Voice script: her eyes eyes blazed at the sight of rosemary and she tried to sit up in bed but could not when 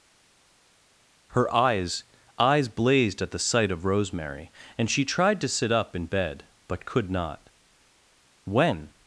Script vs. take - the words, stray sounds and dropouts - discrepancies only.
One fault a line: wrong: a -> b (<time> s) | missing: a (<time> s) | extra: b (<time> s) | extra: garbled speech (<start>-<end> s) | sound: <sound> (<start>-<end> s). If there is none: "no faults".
no faults